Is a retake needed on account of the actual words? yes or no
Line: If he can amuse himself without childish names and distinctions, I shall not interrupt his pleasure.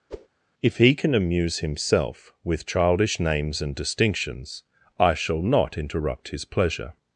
yes